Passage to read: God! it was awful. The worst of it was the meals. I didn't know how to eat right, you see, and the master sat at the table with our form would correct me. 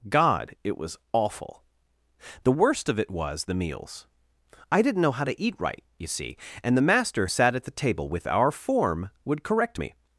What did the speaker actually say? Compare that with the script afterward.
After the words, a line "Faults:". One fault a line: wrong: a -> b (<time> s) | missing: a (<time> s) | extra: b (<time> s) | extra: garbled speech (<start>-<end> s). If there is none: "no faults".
God! it was awful. The worst of it was the meals. I didn't know how to eat right, you see, and the master sat at the table with our form would correct me.
Faults:
no faults